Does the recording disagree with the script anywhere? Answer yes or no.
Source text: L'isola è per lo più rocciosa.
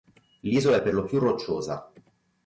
no